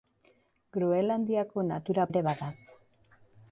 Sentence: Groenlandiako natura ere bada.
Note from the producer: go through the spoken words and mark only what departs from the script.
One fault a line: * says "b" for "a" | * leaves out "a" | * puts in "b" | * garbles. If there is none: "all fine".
all fine